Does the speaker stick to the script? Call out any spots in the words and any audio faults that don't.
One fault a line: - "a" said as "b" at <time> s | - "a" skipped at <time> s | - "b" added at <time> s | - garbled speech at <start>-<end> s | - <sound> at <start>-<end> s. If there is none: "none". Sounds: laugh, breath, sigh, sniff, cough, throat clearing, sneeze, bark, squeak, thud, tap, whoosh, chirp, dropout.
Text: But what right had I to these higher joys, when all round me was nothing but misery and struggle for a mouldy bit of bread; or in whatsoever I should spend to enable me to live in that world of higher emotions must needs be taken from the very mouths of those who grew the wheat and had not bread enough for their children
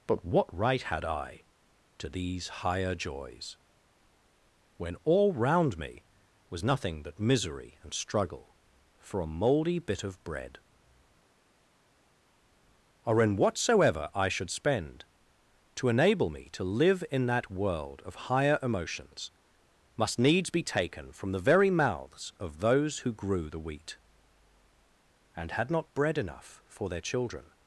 none